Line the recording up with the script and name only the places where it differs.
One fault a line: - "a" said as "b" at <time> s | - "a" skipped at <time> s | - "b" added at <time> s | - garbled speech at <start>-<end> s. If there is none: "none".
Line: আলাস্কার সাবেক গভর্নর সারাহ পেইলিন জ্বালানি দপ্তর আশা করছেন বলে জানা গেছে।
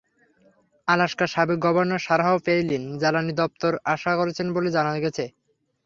none